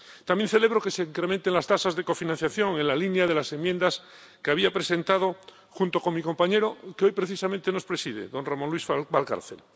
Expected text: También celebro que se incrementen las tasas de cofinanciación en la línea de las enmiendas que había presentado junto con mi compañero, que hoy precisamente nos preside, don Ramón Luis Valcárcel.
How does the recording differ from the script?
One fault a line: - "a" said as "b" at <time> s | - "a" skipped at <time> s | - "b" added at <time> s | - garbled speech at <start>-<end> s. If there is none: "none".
none